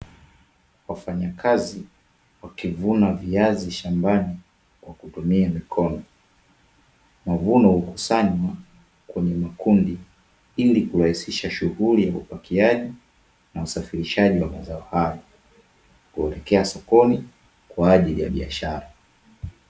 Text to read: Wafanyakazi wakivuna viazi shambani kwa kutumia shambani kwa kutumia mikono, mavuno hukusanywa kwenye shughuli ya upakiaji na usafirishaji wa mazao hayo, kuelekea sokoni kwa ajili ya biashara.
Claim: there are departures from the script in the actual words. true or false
true